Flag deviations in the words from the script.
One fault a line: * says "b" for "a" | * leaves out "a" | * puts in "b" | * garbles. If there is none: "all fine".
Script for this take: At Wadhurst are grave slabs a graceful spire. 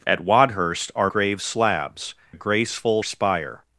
all fine